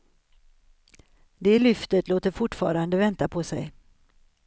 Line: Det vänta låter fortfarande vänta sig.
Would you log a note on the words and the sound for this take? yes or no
yes